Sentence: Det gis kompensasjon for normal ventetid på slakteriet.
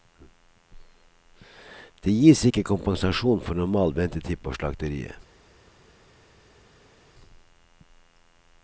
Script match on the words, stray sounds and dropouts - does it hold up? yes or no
no